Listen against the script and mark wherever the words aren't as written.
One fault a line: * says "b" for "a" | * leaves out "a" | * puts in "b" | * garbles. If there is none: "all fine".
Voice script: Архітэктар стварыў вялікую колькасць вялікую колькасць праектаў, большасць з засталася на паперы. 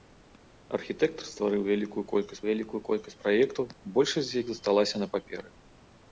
all fine